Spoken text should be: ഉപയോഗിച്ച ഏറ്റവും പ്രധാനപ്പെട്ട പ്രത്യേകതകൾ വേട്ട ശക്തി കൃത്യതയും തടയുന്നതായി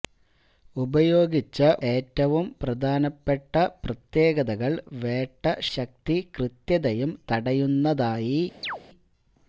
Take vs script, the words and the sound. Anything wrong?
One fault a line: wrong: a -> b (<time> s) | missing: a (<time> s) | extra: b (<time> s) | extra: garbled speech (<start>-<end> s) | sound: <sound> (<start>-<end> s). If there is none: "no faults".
sound: chirp (8.6-8.8 s)